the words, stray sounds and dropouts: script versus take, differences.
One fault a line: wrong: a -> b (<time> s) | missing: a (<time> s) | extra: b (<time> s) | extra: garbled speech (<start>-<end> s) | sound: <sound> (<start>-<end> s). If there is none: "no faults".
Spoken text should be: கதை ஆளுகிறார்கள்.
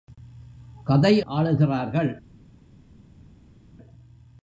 no faults